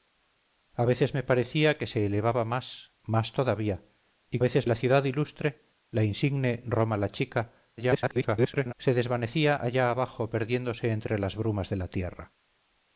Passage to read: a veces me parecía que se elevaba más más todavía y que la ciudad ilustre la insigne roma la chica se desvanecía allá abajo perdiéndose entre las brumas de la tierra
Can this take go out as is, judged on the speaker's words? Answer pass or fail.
fail